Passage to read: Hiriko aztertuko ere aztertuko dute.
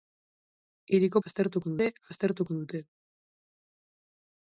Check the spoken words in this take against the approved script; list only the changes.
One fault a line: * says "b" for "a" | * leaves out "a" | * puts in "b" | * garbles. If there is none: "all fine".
all fine